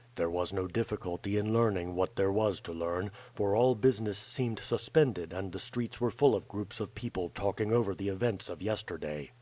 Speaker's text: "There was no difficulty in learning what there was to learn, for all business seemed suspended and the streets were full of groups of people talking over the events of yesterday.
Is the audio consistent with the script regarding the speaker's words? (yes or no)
yes